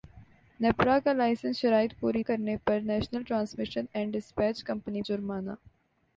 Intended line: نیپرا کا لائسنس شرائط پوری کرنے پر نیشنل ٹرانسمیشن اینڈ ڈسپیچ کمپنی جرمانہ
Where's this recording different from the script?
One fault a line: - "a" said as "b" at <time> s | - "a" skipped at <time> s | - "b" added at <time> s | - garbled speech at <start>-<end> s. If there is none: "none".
none